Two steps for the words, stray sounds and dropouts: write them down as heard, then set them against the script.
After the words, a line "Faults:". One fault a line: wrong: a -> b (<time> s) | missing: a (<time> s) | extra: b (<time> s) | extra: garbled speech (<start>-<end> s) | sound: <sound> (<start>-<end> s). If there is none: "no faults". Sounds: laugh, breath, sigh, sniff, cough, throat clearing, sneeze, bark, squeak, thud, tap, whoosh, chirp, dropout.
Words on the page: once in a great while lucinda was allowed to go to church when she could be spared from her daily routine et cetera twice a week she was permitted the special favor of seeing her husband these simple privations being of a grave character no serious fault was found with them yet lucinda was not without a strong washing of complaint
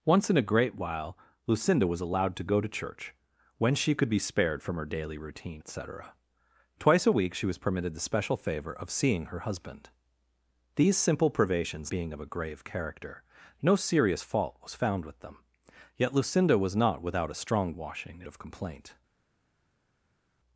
once in a great while lucinda was allowed to go to church when she could be spared from her daily routine et cetera twice a week she was permitted the special favor of seeing her husband these simple privations being of a grave character no serious fault was found with them yet lucinda was not without a strong washing of complaint
Faults:
no faults